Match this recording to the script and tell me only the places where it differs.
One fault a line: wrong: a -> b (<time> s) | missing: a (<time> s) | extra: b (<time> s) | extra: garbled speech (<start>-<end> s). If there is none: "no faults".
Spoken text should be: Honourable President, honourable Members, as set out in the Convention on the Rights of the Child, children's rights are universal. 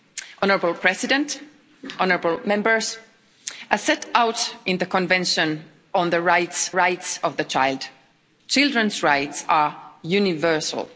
extra: Rights (6.7 s)